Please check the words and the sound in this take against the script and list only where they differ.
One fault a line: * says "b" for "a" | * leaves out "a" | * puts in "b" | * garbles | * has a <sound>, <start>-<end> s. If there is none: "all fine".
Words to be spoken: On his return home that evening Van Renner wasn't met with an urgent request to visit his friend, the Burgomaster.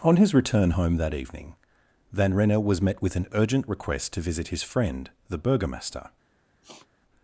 * says "was" for "wasn't"
* has a sniff, 6.6-6.9 s